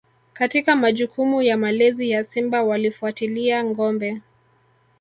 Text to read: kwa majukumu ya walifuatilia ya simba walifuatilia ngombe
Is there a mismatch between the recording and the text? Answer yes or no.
yes